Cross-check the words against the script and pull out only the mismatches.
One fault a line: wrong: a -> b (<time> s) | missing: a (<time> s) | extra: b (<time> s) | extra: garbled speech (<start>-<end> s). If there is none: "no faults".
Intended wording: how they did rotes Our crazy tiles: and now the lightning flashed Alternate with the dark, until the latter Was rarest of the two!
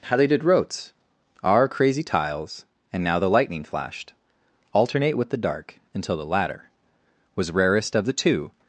no faults